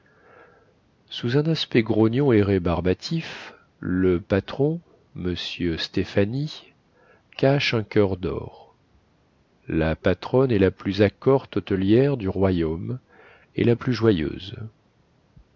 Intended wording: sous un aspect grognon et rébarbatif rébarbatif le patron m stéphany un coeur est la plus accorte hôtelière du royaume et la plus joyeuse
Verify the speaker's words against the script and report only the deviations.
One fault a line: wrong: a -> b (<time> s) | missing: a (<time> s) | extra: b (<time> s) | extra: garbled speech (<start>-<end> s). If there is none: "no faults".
missing: rébarbatif (3.5 s)
extra: cache (7.4 s)
extra: dor la patronne (8.2 s)